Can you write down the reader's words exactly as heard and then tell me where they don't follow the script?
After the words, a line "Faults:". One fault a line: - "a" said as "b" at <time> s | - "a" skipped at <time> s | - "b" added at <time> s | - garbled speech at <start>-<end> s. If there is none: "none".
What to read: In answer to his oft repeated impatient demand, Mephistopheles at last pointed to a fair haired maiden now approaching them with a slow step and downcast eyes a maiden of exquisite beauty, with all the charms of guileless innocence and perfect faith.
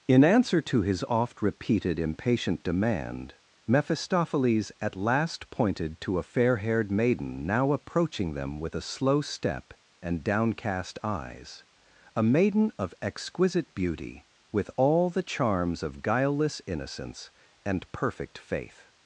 In answer to his oft repeated impatient demand, Mephistopheles at last pointed to a fair haired maiden now approaching them with a slow step and downcast eyes a maiden of exquisite beauty, with all the charms of guileless innocence and perfect faith.
Faults:
none